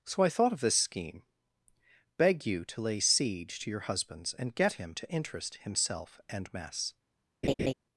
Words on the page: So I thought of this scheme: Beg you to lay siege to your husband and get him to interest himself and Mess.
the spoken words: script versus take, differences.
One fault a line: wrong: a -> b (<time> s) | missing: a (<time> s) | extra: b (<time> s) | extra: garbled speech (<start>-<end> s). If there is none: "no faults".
wrong: husband -> husbands (3.8 s)